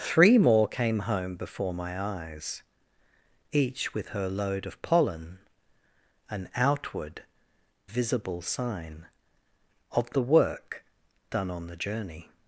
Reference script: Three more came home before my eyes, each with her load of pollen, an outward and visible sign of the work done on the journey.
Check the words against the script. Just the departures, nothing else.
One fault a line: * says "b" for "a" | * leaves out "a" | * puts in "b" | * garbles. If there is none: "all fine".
* leaves out "and"